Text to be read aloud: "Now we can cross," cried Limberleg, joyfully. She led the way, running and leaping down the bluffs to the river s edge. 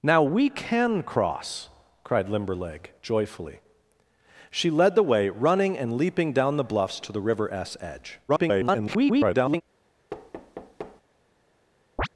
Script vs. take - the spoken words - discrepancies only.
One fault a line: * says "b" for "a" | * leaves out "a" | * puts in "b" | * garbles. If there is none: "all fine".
* garbles